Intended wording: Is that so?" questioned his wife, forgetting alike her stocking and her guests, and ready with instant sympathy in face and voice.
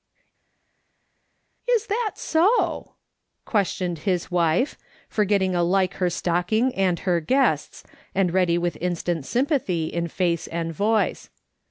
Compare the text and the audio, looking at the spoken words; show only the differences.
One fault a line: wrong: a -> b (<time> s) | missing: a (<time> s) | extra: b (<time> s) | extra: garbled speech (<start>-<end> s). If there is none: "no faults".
no faults